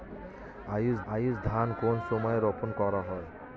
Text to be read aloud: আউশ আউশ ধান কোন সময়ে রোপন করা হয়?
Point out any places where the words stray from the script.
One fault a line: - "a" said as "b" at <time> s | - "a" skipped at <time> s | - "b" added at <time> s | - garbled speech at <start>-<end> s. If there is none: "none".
none